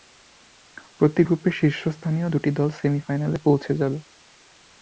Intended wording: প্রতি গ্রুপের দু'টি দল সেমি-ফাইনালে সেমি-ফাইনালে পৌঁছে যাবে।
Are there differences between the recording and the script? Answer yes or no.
yes